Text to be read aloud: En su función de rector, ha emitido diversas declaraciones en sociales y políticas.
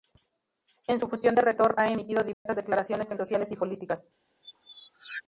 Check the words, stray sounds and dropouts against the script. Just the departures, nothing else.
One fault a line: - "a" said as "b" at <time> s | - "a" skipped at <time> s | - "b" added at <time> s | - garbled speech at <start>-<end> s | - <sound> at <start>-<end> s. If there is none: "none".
- dropout at 2.3-2.5 s
- squeak at 4.4-5.2 s